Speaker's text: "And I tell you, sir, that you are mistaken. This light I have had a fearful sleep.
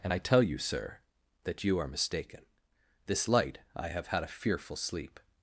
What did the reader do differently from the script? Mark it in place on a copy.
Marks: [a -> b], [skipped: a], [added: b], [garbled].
"And I tell you, sir, that you are mistaken. This light I have had a fearful sleep.